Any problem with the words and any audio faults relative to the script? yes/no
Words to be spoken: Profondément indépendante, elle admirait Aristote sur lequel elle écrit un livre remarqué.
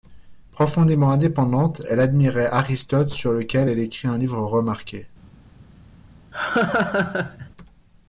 yes